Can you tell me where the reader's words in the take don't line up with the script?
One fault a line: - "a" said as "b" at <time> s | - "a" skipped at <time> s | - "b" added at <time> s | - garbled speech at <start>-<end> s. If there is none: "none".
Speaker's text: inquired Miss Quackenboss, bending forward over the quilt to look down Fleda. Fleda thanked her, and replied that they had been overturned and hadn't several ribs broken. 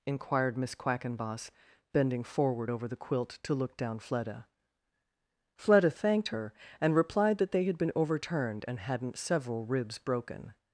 none